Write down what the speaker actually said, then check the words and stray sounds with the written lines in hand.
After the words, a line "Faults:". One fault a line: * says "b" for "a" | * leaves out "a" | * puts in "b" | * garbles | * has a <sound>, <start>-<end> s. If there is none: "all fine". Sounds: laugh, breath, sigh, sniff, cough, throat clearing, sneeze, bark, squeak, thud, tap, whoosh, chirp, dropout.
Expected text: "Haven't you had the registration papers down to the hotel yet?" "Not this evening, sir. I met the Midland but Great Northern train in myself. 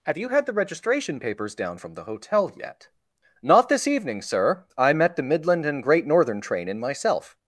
"Have you had the registration papers down from the hotel yet?" "Not this evening, sir. I met the Midland and Great Northern train in myself.
Faults:
* says "Have" for "Haven't"
* says "from" for "to"
* says "and" for "but"